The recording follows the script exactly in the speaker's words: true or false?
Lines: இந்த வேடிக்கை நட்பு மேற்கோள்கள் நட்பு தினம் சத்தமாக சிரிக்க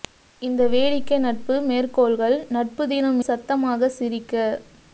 true